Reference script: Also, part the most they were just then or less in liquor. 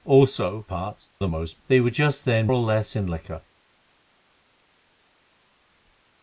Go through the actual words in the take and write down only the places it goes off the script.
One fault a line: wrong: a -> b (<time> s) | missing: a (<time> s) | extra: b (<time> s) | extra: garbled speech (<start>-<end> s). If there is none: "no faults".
no faults